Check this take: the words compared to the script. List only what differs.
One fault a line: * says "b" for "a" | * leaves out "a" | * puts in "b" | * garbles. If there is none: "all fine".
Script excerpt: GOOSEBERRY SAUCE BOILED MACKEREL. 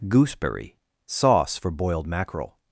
* puts in "FOR"